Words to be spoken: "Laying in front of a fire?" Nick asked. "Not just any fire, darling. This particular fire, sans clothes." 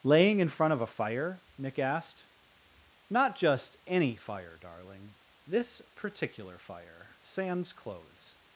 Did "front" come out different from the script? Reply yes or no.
no